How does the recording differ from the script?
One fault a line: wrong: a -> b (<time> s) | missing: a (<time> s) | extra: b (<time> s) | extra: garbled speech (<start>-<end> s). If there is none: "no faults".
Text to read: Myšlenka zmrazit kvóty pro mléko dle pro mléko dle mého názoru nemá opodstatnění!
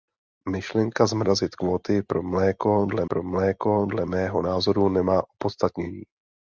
no faults